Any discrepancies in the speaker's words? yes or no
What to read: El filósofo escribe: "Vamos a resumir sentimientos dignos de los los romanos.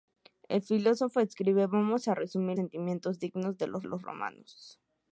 no